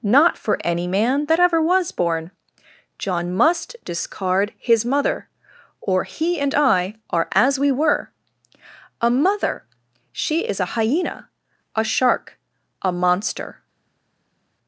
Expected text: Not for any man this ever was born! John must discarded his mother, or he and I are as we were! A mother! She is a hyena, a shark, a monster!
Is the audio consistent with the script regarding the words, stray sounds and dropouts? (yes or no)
no